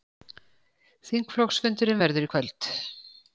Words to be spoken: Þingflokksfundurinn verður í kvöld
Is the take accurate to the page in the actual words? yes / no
yes